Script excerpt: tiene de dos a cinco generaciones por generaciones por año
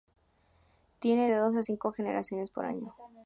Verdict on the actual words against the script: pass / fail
fail